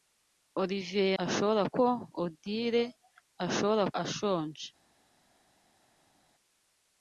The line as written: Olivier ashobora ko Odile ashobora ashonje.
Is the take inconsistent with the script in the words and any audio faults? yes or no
no